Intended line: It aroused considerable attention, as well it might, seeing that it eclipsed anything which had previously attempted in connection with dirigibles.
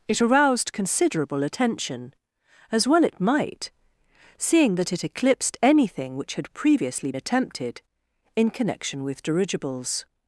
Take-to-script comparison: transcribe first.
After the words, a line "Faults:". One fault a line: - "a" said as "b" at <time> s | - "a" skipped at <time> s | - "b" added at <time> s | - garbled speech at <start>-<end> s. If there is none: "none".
It aroused considerable attention, as well it might, seeing that it eclipsed anything which had previously attempted in connection with dirigibles.
Faults:
none